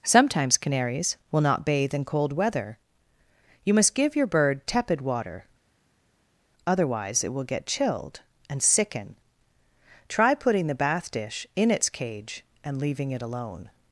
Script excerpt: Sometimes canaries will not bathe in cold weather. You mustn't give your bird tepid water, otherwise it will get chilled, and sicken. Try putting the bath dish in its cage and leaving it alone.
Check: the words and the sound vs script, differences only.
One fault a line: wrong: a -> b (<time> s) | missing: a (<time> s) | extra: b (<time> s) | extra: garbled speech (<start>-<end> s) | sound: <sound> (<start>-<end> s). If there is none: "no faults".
wrong: mustn't -> must (3.8 s)